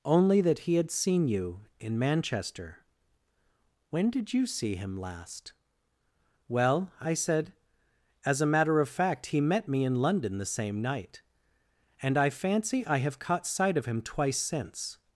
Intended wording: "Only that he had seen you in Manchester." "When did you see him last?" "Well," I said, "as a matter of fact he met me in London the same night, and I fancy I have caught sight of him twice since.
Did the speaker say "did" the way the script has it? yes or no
yes